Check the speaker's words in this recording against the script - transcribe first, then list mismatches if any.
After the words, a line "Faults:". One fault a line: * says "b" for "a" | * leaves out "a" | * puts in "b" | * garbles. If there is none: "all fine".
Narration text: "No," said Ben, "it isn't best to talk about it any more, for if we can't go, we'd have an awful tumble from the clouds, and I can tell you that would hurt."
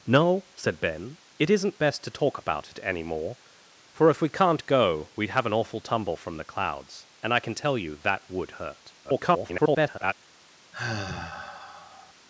"No," said Ben, "it isn't best to talk about it any more, for if we can't go, we'd have an awful tumble from the clouds, and I can tell you that would hurt." [garbled]
Faults:
* garbles